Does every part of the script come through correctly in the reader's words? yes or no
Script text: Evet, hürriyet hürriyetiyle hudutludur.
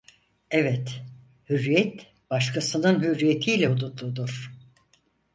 no